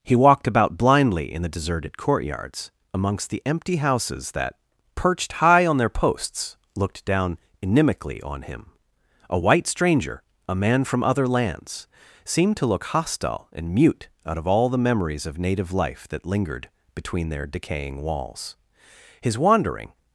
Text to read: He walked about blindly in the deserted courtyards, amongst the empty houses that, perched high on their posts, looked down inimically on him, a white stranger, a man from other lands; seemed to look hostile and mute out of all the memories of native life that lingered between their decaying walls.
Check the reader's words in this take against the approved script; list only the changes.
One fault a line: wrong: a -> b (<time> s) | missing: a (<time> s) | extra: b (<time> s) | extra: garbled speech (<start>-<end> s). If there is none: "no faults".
extra: His wandering (19.2 s)